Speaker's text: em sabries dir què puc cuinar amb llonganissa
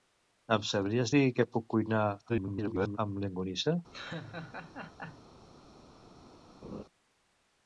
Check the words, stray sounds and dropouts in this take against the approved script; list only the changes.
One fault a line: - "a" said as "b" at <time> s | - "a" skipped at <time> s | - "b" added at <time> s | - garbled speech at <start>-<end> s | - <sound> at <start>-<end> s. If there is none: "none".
- garbled speech at 2.3-3.0 s
- laugh at 3.9-5.3 s
- laugh at 6.6-6.8 s